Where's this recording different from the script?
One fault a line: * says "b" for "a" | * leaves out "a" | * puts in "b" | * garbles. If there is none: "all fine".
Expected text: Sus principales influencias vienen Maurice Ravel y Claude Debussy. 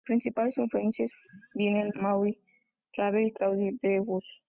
all fine